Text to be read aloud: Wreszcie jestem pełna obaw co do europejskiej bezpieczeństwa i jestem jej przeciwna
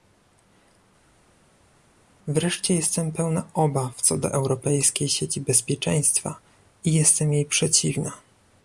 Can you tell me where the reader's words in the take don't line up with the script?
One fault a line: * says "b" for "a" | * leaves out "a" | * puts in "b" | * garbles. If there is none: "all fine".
* puts in "sieci"